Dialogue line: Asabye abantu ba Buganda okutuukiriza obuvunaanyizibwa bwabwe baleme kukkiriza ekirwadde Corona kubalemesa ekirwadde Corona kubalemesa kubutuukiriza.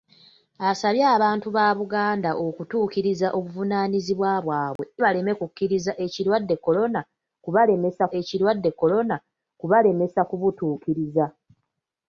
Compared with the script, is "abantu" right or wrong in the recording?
right